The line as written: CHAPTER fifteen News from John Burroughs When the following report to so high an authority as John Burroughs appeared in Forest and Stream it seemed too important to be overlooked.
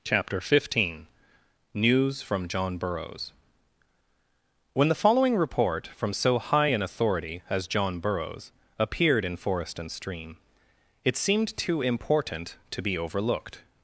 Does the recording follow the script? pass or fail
fail